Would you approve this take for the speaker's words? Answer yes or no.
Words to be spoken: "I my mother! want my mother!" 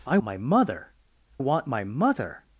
yes